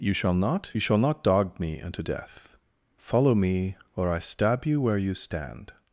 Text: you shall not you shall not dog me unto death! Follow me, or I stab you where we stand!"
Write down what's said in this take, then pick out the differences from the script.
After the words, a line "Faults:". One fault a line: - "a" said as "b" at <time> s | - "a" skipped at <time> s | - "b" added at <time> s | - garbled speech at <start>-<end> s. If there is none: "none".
you shall not you shall not dog me unto death! Follow me, or I stab you where you stand!"
Faults:
- "we" said as "you" at 5.0 s